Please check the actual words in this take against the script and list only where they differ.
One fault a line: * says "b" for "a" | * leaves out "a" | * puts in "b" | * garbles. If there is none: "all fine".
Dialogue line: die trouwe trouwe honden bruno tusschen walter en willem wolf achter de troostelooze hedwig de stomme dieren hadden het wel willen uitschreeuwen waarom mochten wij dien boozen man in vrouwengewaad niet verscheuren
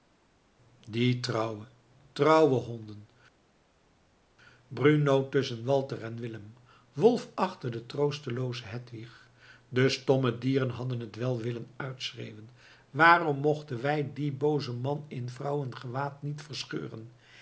all fine